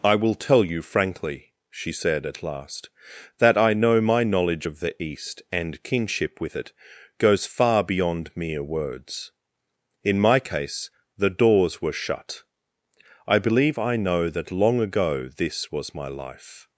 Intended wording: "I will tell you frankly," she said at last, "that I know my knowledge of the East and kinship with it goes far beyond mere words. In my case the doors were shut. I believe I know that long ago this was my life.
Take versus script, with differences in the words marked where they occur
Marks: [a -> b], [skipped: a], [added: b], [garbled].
"I will tell you frankly," she said at last, "that I know my knowledge of the East and kinship with it goes far beyond mere words. In my case the doors were shut. I believe I know that long ago this was my life.